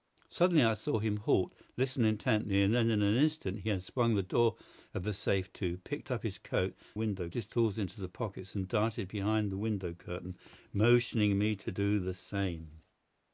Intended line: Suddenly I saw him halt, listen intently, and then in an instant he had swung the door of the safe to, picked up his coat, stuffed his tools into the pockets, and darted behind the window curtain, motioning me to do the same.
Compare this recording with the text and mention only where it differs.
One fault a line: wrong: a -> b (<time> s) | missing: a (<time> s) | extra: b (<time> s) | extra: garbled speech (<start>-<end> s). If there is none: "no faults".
wrong: stuffed -> window (6.9 s)